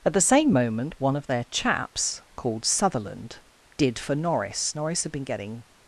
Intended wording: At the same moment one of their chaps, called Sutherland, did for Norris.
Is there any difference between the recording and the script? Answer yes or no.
yes